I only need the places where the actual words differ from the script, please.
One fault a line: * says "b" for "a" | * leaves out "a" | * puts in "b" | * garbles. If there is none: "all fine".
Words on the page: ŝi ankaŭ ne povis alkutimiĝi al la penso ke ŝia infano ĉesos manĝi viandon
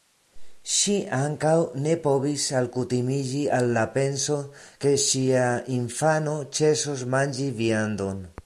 all fine